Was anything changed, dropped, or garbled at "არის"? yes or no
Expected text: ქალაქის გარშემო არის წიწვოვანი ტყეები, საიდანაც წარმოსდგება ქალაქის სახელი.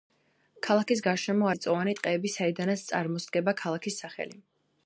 yes